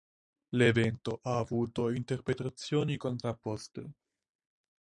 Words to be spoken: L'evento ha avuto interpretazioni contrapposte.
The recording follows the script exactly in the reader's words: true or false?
true